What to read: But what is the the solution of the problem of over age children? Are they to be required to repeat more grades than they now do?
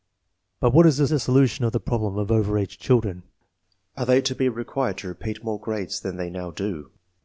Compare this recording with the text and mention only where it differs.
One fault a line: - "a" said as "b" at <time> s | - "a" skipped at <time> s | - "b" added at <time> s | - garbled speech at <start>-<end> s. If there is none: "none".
none